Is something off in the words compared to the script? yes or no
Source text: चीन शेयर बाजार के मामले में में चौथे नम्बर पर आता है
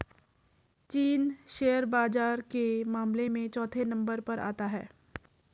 yes